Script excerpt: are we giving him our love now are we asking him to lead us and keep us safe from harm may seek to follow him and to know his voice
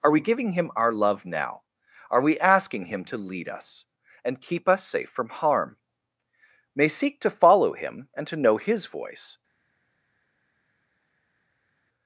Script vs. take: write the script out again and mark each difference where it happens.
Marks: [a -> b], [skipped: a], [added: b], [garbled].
are we giving him our love now are we asking him to lead us and keep us safe from harm may seek to follow him and to know his voice